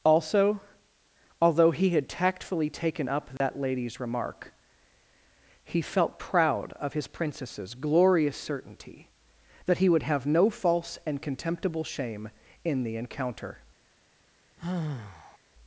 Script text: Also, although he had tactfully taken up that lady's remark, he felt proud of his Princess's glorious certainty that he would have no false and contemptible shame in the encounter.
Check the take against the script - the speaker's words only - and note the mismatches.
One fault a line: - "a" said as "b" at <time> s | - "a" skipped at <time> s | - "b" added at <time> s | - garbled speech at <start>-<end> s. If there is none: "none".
none